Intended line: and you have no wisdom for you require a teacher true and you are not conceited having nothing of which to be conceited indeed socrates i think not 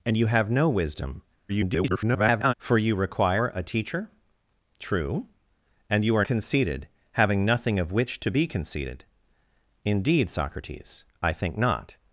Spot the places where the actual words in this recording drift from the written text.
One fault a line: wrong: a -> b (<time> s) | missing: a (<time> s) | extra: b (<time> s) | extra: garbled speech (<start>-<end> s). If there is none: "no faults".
extra: garbled speech (1.5-2.5 s)
missing: not (6.3 s)